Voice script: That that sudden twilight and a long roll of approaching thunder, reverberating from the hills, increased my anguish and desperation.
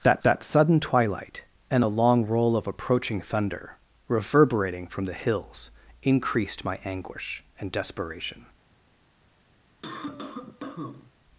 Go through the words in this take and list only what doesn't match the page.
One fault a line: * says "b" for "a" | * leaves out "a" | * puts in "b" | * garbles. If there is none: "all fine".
all fine